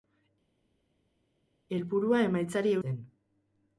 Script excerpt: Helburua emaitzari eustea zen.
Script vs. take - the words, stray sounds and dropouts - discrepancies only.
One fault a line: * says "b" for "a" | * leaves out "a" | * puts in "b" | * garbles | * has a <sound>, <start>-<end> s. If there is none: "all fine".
* leaves out "eustea"